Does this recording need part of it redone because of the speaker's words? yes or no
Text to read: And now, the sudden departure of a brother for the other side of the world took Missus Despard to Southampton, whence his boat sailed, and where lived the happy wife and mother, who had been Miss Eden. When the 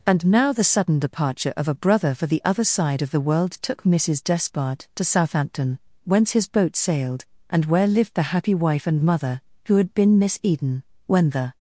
no